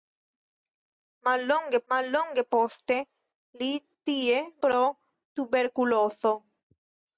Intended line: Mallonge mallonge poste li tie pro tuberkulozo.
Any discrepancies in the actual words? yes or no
no